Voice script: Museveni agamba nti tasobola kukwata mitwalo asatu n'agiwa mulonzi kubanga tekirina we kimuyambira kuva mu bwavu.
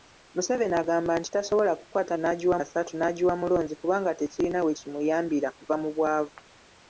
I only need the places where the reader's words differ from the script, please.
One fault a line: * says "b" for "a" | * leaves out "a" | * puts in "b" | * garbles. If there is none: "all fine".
* says "n'agiwa" for "mitwalo"